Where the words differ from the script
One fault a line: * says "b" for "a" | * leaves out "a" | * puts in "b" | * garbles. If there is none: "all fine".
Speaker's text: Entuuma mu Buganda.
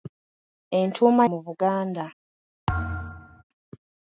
all fine